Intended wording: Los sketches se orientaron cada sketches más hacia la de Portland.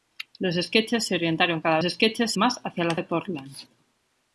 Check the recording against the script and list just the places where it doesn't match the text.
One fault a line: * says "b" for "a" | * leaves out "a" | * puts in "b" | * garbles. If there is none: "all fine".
all fine